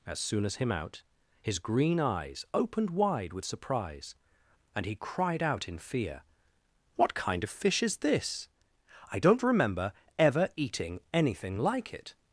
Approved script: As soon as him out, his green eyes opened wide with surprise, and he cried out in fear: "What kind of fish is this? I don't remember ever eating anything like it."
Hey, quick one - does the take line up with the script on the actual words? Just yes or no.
yes